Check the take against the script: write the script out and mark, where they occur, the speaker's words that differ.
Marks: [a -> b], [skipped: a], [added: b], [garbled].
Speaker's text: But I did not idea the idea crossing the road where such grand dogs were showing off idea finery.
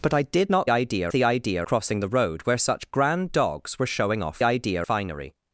But I did not idea the idea crossing the road where such grand dogs were showing off idea finery.